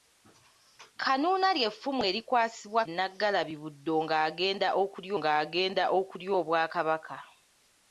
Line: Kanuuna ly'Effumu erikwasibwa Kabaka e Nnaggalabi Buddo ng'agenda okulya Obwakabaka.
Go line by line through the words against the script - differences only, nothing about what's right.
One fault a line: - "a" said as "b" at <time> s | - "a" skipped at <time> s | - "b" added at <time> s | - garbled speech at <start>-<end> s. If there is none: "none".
- "Kabaka" skipped at 2.8 s
- "ng'agenda okulya" added at 5.2 s